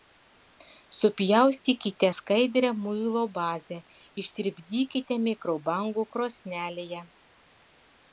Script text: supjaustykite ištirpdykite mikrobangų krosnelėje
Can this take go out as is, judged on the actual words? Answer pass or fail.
fail